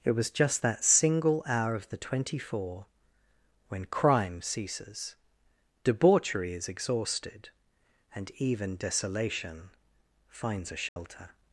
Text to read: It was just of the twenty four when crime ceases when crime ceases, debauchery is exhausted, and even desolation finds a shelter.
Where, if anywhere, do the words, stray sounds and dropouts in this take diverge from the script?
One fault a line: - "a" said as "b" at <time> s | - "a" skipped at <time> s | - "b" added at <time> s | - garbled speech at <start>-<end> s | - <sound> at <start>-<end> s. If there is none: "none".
- "that single hour" added at 0.6 s
- "when crime ceases" skipped at 5.2 s
- dropout at 10.9-11.0 s